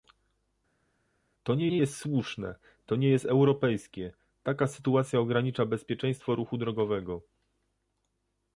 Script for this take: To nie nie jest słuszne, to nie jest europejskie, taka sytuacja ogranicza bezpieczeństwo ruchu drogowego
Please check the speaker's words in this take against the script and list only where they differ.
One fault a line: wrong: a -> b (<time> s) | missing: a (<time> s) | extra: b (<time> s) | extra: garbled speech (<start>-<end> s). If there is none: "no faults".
no faults